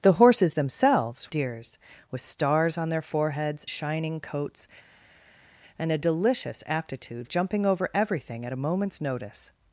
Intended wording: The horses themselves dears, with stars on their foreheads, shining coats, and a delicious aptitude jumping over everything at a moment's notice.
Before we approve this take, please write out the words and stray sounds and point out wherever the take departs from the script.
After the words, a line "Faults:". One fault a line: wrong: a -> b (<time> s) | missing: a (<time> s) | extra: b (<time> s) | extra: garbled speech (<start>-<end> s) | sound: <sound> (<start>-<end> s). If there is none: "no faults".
The horses themselves dears, with stars on their foreheads, shining coats, and a delicious aptitude jumping over everything at a moment's notice.
Faults:
no faults